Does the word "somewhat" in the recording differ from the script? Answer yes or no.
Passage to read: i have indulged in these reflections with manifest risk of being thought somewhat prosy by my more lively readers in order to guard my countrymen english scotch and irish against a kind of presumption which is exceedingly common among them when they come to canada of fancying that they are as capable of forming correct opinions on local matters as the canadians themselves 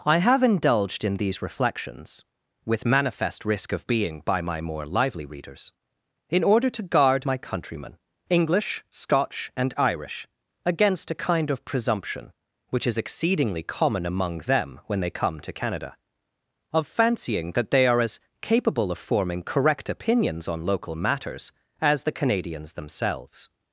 yes